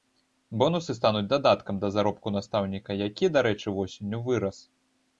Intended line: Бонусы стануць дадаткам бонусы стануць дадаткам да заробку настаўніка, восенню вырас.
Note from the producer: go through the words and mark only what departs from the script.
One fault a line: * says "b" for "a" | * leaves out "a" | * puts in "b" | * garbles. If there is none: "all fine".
* leaves out "бонусы стануць дадаткам"
* puts in "які дарэчы"